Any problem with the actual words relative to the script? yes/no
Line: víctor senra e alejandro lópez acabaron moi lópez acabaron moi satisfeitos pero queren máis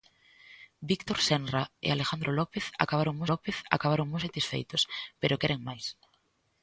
no